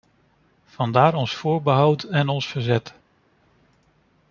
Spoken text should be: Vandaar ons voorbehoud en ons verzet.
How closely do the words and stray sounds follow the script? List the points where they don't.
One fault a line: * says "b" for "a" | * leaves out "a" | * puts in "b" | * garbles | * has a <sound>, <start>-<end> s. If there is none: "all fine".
all fine